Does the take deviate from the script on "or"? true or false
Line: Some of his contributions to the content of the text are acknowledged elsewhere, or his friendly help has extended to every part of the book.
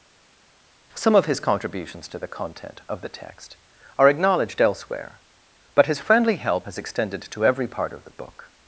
true